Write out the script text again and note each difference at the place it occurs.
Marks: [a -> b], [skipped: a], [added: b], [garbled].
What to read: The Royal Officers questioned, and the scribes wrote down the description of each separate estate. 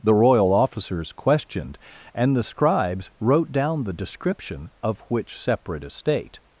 The Royal Officers questioned, and the scribes wrote down the description of [each -> which] separate estate.